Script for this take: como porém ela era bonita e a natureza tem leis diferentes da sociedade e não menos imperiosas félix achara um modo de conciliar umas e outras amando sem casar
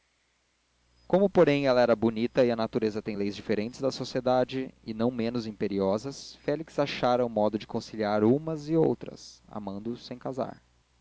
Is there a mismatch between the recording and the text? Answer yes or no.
no